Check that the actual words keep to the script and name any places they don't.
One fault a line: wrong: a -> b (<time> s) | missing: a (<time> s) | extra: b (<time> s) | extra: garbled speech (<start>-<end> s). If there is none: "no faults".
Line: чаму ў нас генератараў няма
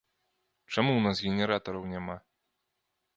no faults